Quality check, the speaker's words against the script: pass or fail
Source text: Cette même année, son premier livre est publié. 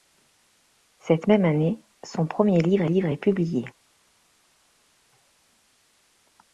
fail